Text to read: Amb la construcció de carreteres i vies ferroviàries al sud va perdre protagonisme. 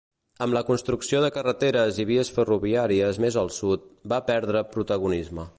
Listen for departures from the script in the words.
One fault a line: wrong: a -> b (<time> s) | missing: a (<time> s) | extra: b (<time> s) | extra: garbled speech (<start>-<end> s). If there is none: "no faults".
extra: més (3.2 s)